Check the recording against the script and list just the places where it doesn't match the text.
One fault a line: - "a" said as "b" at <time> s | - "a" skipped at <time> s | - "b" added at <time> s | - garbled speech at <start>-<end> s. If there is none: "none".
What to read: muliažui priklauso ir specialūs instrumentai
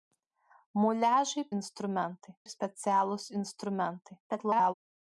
- "priklauso" said as "instrumentai" at 1.6 s
- garbled speech at 4.3-4.7 s